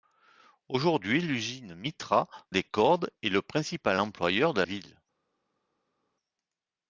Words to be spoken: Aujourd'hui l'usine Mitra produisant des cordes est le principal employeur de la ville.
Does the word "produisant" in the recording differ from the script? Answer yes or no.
yes